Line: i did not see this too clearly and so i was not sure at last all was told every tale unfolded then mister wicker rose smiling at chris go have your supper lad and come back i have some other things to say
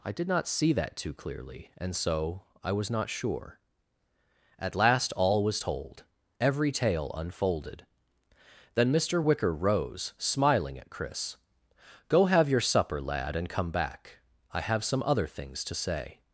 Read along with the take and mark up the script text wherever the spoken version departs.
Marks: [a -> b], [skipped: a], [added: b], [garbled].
i did not see [this -> that] too clearly and so i was not sure at last all was told every tale unfolded then mister wicker rose smiling at chris go have your supper lad and come back i have some other things to say